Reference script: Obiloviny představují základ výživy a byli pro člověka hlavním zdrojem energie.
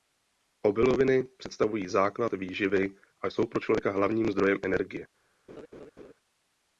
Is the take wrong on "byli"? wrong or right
wrong